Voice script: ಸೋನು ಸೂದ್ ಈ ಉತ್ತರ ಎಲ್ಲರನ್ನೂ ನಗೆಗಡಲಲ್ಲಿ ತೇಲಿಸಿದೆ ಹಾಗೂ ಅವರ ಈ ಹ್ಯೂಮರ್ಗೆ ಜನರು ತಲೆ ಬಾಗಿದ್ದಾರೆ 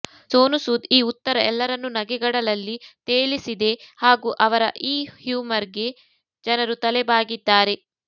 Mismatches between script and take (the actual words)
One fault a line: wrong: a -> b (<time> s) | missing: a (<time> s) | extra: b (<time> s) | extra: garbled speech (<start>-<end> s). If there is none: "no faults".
no faults